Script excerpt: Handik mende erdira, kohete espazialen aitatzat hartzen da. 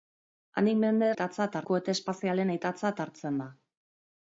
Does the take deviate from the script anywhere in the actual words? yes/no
yes